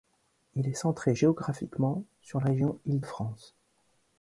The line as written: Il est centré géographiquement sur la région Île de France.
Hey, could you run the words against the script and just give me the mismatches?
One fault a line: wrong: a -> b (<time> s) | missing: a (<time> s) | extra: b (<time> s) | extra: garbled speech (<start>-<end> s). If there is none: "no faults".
missing: la (2.4 s)
missing: de (3.0 s)